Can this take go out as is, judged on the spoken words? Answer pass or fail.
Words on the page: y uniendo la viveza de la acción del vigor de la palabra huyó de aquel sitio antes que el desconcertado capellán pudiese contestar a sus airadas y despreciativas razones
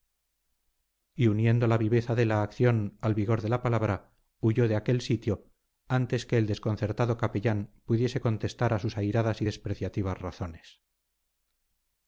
fail